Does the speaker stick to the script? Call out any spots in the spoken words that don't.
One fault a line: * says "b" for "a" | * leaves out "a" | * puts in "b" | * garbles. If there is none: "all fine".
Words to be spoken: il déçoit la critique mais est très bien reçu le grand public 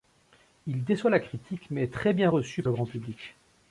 all fine